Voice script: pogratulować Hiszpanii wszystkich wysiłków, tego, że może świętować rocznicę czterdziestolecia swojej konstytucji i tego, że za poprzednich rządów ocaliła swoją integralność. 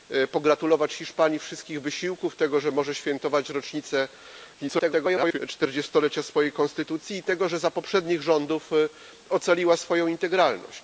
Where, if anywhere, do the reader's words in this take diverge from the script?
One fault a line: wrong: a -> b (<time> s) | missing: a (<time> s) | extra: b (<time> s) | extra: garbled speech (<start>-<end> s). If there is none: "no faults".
extra: garbled speech (4.6-5.4 s)